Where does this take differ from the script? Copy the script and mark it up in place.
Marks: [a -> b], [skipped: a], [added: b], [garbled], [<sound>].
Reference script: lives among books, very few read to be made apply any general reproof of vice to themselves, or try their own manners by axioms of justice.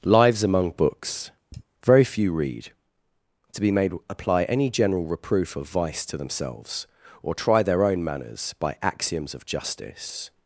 lives among books, [sigh] very few read to be made apply any general reproof of vice to themselves, or try their own manners by axioms of justice.